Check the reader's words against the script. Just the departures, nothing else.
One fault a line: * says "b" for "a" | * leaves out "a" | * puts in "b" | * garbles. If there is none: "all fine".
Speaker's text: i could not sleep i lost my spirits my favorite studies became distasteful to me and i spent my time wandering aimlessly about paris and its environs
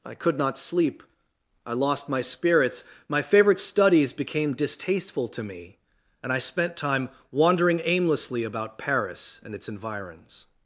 * leaves out "my"